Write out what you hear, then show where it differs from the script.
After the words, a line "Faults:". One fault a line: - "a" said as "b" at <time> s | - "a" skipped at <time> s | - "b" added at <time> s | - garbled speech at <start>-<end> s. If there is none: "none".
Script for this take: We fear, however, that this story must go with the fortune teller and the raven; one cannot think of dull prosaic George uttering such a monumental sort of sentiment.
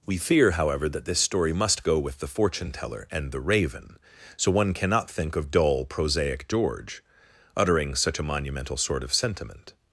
We fear, however, that this story must go with the fortune teller and the raven; so one cannot think of dull prosaic George uttering such a monumental sort of sentiment.
Faults:
- "so" added at 4.3 s